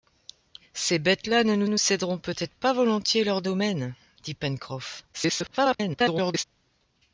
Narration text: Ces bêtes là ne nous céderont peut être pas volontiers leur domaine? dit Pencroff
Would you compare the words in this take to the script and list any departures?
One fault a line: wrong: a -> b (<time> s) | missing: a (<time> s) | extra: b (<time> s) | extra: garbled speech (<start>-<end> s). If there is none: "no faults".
extra: nous (1.6 s)
extra: garbled speech (5.1-6.4 s)